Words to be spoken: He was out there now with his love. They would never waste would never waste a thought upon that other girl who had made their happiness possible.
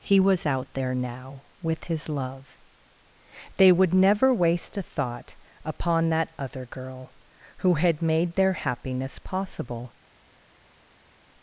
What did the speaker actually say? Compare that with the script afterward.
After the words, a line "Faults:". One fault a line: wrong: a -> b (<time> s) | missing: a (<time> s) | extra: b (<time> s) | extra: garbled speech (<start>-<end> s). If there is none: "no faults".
He was out there now with his love. They would never waste a thought upon that other girl who had made their happiness possible.
Faults:
missing: would never waste (4.8 s)